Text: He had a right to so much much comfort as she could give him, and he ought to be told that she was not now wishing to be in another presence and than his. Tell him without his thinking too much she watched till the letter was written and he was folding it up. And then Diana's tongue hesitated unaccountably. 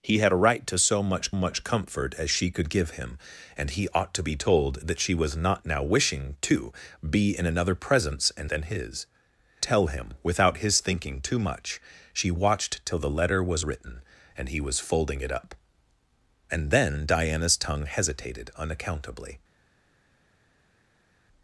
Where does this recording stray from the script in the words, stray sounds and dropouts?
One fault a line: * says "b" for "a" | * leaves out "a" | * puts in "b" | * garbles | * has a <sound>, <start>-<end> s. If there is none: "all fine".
all fine